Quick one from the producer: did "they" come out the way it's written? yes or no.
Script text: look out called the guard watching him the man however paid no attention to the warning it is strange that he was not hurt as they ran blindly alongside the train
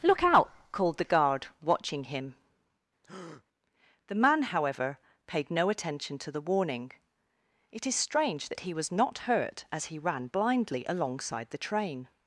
no